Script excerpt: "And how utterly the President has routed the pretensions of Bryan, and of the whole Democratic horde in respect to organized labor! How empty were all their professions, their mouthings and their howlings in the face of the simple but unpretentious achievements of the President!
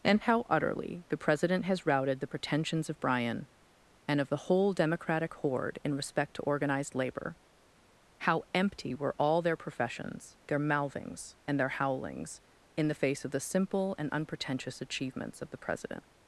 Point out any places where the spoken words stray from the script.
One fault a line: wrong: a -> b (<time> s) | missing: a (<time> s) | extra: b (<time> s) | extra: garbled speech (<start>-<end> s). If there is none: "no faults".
wrong: but -> and (14.0 s)